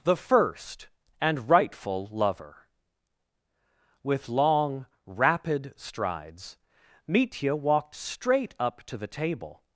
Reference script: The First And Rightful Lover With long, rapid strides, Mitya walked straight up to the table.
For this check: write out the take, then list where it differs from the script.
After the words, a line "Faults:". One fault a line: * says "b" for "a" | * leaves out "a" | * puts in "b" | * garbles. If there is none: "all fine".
The First And Rightful Lover With long, rapid strides, Mitya walked straight up to the table.
Faults:
all fine